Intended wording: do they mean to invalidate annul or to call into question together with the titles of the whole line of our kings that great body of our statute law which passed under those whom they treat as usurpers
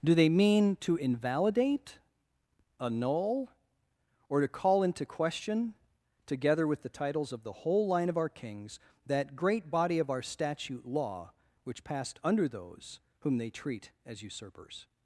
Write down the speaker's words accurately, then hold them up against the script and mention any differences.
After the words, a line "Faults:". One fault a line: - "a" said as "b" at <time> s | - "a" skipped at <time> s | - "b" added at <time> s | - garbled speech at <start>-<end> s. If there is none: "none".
do they mean to invalidate annul or to call into question together with the titles of the whole line of our kings that great body of our statute law which passed under those whom they treat as usurpers
Faults:
none